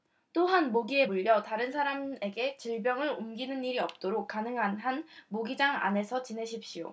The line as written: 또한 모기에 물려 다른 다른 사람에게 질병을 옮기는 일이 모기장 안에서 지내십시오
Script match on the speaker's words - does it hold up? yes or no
no